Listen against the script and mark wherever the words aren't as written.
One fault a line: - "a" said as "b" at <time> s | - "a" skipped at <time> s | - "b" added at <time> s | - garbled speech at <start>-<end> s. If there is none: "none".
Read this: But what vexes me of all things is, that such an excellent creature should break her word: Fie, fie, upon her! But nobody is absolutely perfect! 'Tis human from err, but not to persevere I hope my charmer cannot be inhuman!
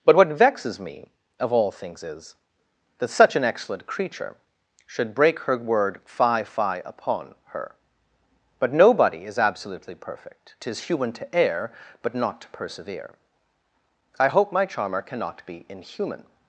- "from" said as "to" at 11.1 s